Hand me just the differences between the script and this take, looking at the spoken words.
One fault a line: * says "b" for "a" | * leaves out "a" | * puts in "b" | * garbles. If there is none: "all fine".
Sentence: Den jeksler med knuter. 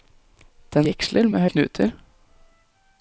all fine